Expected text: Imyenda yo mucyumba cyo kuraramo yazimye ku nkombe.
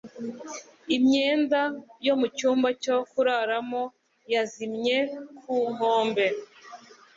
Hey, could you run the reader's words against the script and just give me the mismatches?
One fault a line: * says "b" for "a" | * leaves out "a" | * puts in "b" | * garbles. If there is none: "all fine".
all fine